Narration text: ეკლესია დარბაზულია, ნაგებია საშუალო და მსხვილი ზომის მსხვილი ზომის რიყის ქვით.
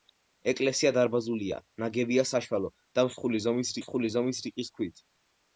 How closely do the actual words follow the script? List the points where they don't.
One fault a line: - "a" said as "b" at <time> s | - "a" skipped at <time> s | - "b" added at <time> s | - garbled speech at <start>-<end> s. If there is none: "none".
none